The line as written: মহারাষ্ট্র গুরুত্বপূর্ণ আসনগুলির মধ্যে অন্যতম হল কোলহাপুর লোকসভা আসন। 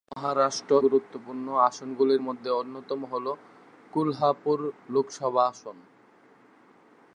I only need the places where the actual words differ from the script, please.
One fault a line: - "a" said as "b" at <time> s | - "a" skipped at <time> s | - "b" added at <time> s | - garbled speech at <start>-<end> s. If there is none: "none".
none